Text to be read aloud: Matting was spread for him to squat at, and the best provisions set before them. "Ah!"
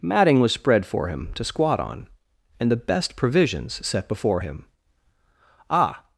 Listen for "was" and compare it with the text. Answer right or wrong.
right